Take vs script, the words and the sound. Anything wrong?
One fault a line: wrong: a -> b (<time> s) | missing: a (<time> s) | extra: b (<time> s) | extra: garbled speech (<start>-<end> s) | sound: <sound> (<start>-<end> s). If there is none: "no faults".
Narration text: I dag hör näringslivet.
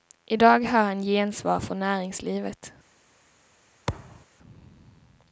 extra: han gensvar från (0.8 s)
sound: thud (3.9-4.3 s)